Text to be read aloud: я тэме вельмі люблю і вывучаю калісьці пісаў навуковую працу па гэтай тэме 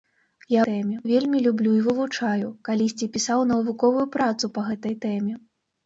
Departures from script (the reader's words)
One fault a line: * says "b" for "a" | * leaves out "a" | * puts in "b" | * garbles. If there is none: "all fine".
all fine